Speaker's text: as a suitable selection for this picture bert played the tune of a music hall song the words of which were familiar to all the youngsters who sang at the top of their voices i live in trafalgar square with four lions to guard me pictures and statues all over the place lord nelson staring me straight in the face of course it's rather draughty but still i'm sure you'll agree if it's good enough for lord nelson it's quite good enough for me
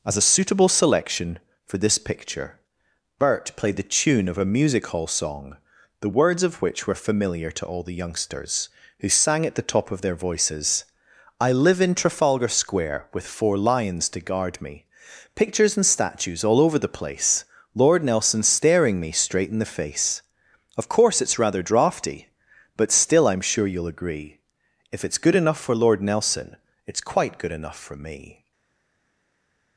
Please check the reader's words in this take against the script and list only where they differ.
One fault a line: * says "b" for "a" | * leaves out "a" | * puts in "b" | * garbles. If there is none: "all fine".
all fine